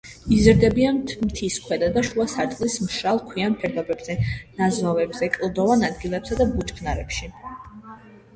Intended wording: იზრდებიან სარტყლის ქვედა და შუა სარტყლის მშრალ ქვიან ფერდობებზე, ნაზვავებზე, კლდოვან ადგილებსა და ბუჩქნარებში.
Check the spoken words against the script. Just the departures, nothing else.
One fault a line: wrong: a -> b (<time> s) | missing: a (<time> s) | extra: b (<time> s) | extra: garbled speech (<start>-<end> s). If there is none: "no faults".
wrong: სარტყლის -> მთის (1.2 s)